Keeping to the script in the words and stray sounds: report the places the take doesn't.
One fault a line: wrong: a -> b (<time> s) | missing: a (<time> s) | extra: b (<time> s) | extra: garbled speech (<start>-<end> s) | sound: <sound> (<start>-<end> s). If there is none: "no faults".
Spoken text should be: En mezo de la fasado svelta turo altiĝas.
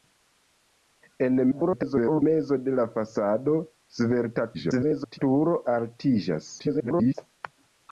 extra: garbled speech (1.5-2.2 s)
extra: garbled speech (4.5-5.2 s)
extra: garbled speech (6.6-7.1 s)